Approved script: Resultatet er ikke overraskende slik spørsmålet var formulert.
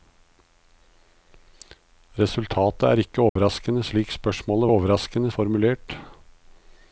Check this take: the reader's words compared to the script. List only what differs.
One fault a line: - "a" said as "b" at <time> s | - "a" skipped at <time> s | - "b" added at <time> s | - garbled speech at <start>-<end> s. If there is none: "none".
- "var" said as "overraskende" at 4.7 s